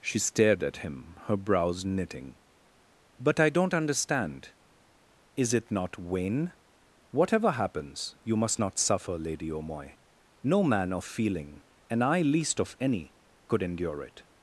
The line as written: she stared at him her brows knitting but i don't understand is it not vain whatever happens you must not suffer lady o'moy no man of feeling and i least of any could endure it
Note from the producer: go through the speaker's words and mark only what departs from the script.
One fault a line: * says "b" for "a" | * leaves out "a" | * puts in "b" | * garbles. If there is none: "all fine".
all fine